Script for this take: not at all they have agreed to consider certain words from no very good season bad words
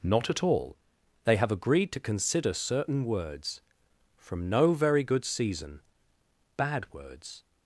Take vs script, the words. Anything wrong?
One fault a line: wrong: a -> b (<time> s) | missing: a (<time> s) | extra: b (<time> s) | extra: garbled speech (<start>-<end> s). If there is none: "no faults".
no faults